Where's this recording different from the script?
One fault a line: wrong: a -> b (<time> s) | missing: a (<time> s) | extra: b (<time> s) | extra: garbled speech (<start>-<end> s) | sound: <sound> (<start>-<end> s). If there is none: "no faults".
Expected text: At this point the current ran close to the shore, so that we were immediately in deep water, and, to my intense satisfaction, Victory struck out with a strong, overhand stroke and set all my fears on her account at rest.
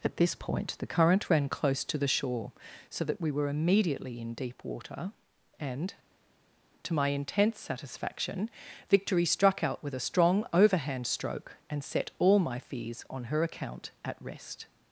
no faults